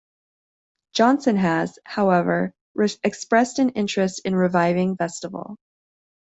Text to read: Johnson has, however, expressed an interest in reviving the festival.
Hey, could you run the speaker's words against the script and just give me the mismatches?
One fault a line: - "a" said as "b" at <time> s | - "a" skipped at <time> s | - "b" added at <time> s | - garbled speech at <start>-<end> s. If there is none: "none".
- "the" skipped at 5.0 s